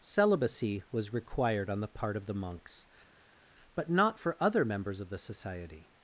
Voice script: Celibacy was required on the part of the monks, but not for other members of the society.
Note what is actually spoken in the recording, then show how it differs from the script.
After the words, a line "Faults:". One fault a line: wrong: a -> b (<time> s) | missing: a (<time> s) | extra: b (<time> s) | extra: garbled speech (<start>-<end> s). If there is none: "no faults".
Celibacy was required on the part of the monks, but not for other members of the society.
Faults:
no faults